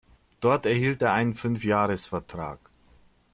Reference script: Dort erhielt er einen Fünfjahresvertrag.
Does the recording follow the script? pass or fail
pass